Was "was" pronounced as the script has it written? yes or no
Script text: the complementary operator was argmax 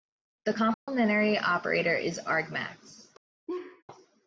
no